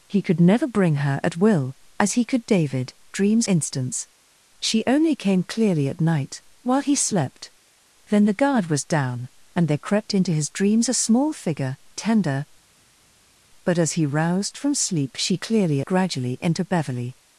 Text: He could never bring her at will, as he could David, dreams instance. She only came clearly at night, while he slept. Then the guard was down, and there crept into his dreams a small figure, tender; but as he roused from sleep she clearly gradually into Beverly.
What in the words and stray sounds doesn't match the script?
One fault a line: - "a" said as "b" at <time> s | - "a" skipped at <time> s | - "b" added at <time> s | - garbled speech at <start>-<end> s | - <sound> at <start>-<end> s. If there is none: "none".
none